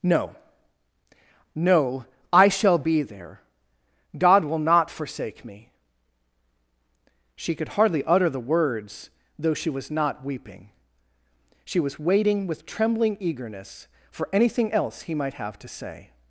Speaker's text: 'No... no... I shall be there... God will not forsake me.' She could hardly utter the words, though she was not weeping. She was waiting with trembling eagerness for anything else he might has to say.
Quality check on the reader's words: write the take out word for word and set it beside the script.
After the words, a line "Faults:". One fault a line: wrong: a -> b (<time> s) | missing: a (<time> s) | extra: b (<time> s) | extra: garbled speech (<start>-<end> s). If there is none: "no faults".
'No... no... I shall be there... God will not forsake me.' She could hardly utter the words, though she was not weeping. She was waiting with trembling eagerness for anything else he might have to say.
Faults:
wrong: has -> have (15.3 s)